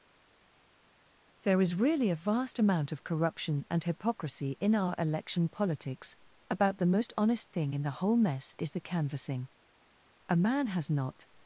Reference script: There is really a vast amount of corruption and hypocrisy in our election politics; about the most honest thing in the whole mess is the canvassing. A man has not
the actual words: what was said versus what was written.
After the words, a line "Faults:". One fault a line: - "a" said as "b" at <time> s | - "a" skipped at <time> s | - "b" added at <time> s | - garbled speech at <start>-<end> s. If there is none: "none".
There is really a vast amount of corruption and hypocrisy in our election politics; about the most honest thing in the whole mess is the canvassing. A man has not
Faults:
none